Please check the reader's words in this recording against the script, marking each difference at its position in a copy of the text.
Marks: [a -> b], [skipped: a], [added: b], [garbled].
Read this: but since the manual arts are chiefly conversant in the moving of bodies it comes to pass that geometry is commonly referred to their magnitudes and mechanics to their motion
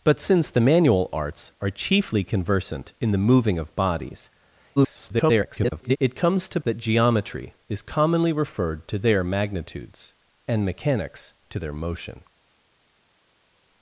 but since the manual arts are chiefly conversant in the moving of bodies [garbled] it comes to [skipped: pass] that geometry is commonly referred to their magnitudes and mechanics to their motion